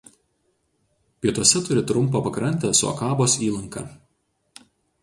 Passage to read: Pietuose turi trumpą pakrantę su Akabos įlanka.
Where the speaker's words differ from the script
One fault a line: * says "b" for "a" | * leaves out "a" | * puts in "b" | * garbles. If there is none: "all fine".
all fine